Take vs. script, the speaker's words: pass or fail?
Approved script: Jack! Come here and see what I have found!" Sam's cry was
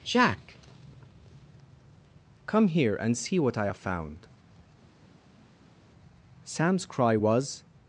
pass